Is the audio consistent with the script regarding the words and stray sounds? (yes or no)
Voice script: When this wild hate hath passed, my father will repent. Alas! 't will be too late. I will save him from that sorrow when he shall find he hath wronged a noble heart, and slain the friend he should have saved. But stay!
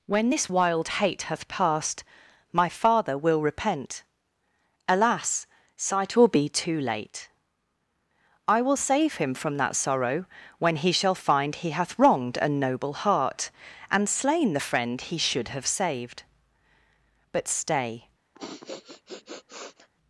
no